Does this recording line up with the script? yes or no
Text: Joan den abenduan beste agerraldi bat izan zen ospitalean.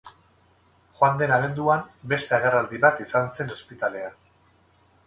yes